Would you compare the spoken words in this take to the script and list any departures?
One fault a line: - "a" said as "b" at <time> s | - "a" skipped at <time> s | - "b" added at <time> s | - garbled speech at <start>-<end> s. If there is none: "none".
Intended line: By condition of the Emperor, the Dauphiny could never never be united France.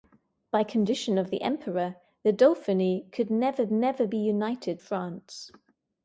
none